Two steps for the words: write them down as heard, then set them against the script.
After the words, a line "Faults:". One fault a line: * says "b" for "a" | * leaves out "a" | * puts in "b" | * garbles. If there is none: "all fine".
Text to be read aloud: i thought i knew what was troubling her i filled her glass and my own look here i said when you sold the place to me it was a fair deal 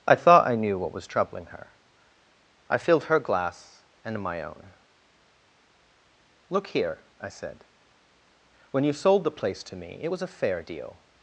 i thought i knew what was troubling her i filled her glass and my own look here i said when you sold the place to me it was a fair deal
Faults:
all fine